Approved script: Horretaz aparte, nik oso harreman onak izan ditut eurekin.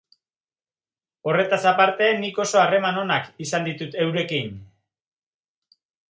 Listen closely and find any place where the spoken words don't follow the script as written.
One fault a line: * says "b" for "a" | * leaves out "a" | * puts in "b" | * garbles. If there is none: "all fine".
all fine